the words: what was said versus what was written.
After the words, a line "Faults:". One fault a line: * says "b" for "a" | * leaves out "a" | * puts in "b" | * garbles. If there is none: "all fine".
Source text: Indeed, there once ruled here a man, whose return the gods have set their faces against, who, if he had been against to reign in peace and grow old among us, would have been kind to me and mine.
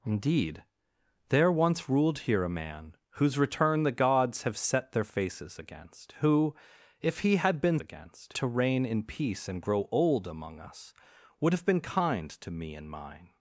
Indeed, there once ruled here a man, whose return the gods have set their faces against, who, if he had been against to reign in peace and grow old among us, would have been kind to me and mine.
Faults:
all fine